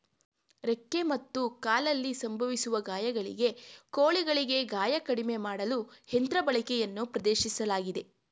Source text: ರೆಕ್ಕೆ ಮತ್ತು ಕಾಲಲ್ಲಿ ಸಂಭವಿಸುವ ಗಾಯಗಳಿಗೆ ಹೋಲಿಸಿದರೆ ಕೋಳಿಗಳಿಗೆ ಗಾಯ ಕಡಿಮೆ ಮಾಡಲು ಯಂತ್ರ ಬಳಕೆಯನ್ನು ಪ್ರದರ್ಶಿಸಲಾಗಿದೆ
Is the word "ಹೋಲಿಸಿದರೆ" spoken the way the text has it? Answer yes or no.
no